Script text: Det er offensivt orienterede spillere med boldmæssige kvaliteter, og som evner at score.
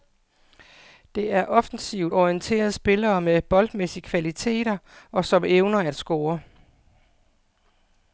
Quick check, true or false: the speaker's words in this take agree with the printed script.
true